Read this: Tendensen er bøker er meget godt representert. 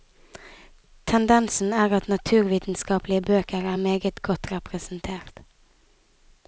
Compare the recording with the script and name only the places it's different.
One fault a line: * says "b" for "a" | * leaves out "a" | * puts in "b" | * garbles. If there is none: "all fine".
* puts in "at naturvitenskapelige"